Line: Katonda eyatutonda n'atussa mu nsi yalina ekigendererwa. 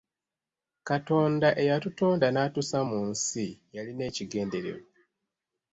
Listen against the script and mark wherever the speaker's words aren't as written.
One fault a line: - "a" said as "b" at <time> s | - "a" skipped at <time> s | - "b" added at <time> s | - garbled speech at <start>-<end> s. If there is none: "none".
none